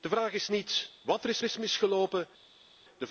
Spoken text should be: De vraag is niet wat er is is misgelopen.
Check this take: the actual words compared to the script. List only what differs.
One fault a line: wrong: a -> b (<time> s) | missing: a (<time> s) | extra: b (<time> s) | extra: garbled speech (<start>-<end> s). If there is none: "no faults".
no faults